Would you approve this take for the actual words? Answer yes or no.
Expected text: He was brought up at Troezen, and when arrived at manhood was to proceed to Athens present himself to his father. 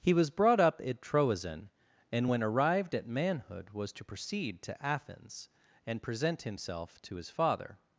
no